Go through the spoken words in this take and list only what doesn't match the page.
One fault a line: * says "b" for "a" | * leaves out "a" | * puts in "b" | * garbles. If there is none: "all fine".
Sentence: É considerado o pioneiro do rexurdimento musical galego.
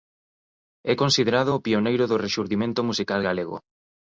all fine